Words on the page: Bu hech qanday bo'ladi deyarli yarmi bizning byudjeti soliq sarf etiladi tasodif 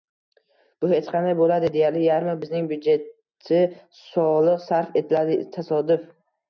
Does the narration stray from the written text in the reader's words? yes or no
no